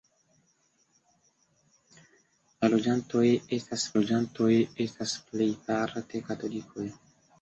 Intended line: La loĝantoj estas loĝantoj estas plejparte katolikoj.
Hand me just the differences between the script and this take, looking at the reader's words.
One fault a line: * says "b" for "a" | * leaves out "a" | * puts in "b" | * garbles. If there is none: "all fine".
all fine